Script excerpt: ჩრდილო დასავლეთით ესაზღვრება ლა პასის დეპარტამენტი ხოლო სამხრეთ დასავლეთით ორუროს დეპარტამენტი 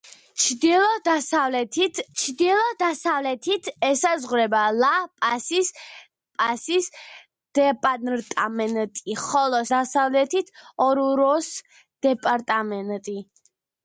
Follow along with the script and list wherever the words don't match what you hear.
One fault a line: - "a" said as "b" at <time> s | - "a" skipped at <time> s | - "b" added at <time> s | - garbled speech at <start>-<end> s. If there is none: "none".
- "ჩრდილო დასავლეთით" added at 2.2 s
- "პასის" added at 6.4 s
- "სამხრეთ" skipped at 9.6 s